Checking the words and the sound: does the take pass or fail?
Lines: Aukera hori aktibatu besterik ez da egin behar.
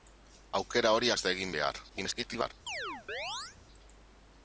fail